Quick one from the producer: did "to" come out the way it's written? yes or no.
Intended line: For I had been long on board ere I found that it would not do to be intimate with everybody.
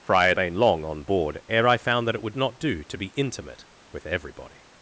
yes